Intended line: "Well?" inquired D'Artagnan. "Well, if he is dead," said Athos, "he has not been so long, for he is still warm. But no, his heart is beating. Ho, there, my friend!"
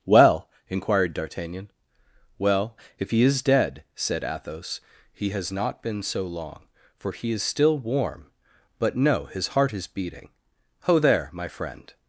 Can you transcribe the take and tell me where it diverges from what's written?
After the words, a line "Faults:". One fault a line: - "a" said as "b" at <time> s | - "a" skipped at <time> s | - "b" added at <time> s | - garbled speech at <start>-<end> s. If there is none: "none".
"Well?" inquired D'Artagnan. "Well, if he is dead," said Athos, "he has not been so long, for he is still warm. But no, his heart is beating. Ho, there, my friend!"
Faults:
none